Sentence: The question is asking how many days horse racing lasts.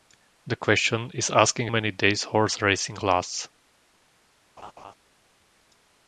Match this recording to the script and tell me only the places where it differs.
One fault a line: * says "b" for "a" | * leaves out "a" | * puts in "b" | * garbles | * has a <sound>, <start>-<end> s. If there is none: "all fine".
* leaves out "how"
* has a laugh, 4.6-4.9 s